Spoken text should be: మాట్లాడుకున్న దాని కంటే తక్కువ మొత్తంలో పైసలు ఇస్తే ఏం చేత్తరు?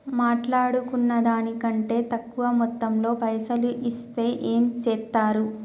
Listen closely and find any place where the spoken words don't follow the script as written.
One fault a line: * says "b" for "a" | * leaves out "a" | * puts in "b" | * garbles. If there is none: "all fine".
all fine